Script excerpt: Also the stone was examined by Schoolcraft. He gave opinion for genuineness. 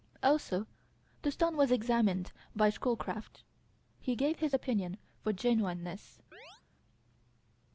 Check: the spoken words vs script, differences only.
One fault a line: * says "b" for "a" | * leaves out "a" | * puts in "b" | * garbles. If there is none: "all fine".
* puts in "his"